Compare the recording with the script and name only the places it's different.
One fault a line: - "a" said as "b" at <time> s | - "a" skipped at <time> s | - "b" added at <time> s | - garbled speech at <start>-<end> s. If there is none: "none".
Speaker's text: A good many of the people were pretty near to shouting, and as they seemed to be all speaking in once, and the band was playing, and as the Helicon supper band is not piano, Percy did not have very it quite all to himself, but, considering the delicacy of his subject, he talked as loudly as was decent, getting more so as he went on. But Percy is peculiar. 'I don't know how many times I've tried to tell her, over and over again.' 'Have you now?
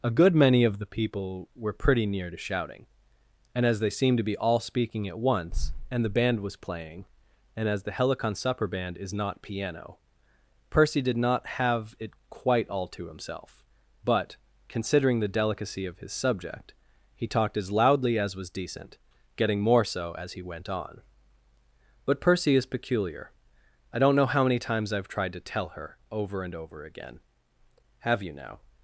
- "in" said as "at" at 5.1 s
- "very" skipped at 12.0 s